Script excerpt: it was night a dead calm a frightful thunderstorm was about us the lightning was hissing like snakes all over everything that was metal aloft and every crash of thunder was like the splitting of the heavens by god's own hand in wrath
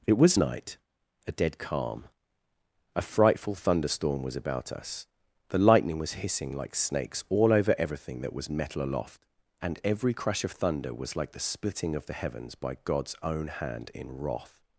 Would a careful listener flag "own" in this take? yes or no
no